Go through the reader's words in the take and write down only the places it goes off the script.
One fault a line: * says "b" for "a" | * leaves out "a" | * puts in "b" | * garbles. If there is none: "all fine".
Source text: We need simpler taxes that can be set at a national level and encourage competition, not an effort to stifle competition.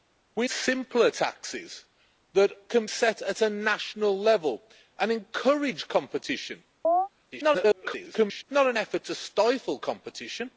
* leaves out "need"
* leaves out "be"
* garbles